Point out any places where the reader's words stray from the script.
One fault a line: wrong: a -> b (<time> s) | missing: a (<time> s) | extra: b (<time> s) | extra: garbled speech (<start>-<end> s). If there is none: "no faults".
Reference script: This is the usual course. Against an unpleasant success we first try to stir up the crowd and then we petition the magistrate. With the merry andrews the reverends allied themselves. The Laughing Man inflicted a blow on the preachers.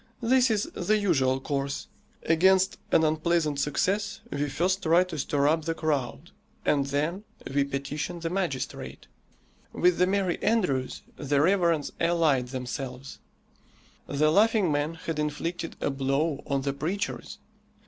extra: had (14.9 s)